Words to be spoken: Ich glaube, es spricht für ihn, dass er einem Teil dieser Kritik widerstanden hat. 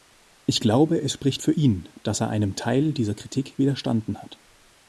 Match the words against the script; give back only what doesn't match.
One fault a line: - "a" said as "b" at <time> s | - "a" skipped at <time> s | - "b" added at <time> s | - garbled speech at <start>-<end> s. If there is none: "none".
none